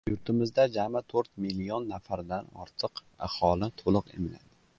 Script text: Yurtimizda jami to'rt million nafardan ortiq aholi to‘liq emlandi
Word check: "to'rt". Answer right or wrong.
right